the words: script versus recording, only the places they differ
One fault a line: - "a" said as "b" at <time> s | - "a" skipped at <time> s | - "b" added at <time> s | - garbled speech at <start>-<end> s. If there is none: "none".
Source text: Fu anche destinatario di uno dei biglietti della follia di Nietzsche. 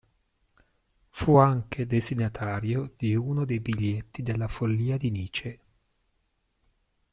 none